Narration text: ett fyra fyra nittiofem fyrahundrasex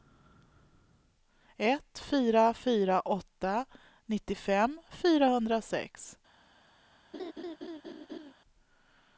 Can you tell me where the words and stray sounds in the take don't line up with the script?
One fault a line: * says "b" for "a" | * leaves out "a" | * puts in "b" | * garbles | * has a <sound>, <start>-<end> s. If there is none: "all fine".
* puts in "åtta"
* has a laugh, 7.1-8.3 s